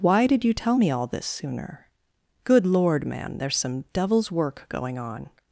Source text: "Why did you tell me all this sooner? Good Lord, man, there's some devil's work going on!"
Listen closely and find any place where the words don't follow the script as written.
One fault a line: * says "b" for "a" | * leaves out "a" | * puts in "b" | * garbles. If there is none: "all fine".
all fine